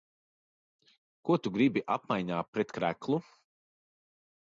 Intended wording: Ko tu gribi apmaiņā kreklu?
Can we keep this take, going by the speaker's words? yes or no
no